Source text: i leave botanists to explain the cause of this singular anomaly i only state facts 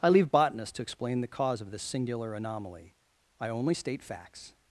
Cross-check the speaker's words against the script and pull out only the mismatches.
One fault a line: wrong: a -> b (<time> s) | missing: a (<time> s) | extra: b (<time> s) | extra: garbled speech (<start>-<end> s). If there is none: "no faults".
no faults